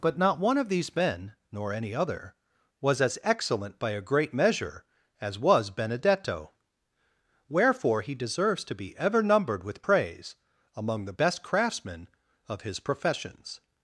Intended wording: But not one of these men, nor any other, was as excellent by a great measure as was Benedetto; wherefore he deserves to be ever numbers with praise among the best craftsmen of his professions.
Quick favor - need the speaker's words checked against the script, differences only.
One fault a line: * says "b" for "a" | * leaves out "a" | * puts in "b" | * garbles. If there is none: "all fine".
* says "numbered" for "numbers"